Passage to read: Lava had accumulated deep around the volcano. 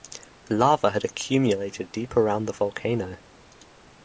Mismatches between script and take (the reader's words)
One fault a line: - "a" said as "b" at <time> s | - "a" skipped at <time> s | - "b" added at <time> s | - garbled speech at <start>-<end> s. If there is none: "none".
none